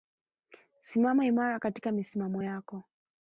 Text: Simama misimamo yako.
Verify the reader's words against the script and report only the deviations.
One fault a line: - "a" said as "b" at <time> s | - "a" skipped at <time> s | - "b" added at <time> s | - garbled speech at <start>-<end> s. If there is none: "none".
- "imara katika" added at 1.2 s